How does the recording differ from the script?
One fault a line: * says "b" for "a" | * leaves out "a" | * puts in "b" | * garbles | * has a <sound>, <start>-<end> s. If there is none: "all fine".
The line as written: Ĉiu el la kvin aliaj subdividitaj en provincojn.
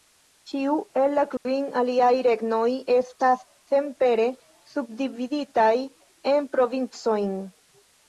* has a dropout, 1.4-1.5 s
* puts in "regnoj estas senpere"